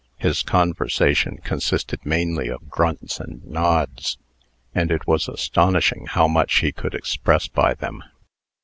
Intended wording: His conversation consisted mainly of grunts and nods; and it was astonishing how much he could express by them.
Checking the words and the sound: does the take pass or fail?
pass